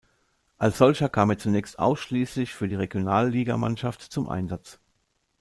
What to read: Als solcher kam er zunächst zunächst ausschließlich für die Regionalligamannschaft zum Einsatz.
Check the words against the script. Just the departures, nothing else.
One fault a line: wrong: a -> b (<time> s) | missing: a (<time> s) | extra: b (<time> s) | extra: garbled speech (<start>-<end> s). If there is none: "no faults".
missing: zunächst (1.8 s)